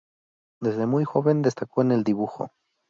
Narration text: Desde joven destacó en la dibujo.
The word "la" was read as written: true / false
false